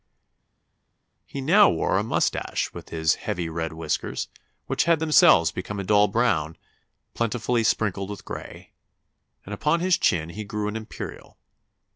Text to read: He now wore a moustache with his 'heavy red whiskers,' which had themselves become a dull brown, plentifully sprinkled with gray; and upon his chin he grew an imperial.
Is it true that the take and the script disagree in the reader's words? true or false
false